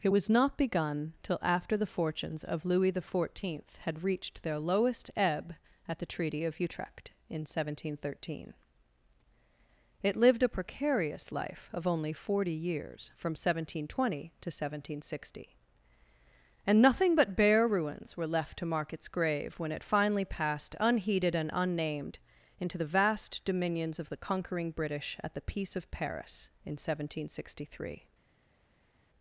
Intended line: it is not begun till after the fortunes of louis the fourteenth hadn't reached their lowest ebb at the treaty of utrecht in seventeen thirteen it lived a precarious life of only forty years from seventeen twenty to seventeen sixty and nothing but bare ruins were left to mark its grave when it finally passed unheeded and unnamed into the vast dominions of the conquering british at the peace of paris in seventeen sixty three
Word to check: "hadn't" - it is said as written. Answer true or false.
false